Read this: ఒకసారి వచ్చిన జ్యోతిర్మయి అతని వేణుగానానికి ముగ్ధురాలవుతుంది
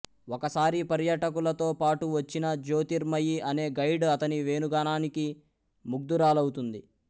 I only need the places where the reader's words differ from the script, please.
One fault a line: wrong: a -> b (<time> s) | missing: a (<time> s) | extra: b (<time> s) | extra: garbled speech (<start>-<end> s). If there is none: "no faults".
extra: పర్యాటకులతో పాటు (0.9 s)
extra: అనే గైడ్ (3.5 s)